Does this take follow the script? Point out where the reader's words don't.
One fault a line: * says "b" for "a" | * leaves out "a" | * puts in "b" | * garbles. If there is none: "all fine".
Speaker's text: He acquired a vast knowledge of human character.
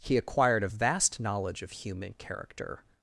all fine